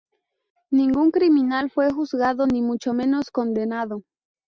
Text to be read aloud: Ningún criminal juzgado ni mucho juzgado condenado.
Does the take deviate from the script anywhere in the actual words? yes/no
yes